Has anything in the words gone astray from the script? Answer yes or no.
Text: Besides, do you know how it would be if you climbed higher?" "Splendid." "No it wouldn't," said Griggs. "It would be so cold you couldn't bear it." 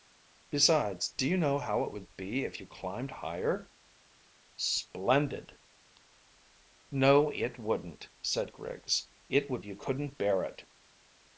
yes